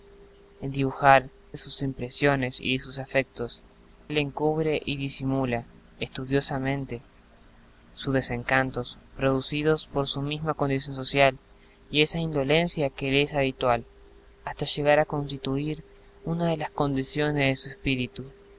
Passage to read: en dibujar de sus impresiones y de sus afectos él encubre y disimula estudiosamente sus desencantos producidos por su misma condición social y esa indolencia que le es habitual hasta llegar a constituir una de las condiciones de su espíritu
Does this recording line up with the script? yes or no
yes